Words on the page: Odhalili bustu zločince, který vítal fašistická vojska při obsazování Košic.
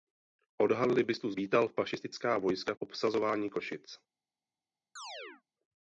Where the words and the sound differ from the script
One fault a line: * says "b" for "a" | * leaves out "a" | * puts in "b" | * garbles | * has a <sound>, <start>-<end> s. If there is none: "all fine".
* leaves out "zločince který"
* leaves out "při"
* has a chirp, 5.0-5.4 s